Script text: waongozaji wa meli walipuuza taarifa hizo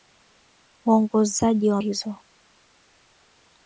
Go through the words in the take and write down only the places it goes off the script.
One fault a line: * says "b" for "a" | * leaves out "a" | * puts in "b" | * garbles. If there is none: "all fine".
* leaves out "meli walipuuza taarifa"